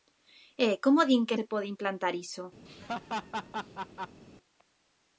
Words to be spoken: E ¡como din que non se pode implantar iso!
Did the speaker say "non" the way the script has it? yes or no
no